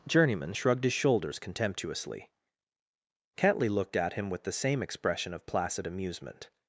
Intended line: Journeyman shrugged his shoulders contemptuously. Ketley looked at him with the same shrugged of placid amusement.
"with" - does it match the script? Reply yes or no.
yes